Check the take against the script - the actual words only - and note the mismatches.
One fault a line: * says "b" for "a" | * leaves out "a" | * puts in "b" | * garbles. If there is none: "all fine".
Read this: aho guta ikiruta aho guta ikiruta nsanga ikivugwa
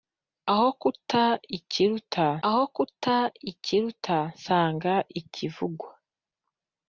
all fine